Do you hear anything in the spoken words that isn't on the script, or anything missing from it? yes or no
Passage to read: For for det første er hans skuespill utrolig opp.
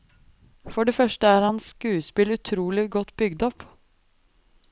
yes